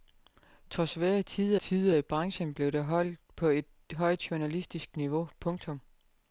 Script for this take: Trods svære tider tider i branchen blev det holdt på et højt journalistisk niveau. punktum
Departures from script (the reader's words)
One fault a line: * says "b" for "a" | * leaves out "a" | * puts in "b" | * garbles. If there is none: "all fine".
all fine